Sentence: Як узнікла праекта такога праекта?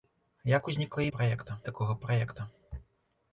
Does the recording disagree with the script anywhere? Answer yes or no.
no